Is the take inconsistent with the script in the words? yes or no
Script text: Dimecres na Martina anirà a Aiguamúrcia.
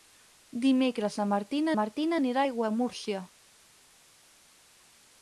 yes